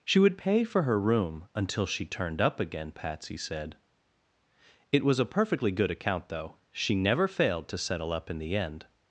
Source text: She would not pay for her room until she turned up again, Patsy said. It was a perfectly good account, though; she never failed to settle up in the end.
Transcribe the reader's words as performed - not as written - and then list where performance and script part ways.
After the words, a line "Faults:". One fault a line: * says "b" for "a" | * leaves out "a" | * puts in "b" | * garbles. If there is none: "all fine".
She would pay for her room until she turned up again, Patsy said. It was a perfectly good account, though; she never failed to settle up in the end.
Faults:
* leaves out "not"